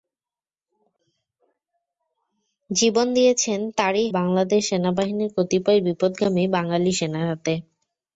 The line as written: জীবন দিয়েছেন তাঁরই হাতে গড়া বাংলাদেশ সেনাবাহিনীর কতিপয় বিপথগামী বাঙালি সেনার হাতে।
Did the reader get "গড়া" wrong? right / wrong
wrong